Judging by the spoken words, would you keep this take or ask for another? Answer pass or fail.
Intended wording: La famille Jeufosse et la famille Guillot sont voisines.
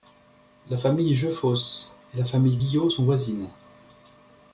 pass